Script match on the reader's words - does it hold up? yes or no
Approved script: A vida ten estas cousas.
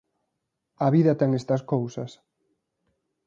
yes